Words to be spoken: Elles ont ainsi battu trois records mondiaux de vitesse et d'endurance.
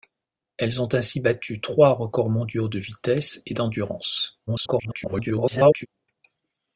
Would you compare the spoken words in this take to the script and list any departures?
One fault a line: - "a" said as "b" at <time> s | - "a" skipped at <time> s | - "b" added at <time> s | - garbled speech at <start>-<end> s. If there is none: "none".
- garbled speech at 4.5-5.9 s